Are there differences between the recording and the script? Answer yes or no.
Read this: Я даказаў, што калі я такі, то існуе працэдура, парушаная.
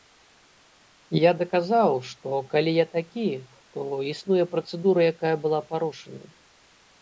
yes